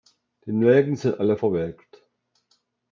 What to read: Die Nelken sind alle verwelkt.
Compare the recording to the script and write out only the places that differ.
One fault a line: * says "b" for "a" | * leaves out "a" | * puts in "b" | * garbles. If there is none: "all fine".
all fine